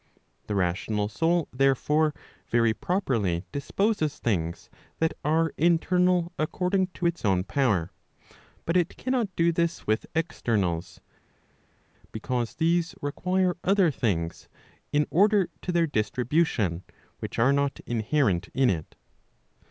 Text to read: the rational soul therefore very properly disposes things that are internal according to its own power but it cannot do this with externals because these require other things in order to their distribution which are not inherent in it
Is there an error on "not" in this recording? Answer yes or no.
no